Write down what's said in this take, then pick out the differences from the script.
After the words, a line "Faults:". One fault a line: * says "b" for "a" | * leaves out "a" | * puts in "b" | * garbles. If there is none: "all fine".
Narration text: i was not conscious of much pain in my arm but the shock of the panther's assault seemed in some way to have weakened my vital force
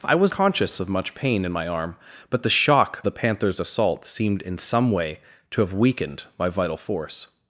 i was conscious of much pain in my arm but the shock the panther's assault seemed in some way to have weakened my vital force
Faults:
* leaves out "not"
* leaves out "of"